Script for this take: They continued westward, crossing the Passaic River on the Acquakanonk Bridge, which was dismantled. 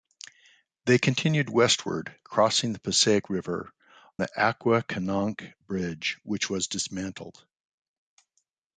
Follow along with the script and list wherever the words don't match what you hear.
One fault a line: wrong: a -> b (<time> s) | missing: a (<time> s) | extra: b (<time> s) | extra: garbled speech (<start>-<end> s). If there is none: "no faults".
missing: on (3.7 s)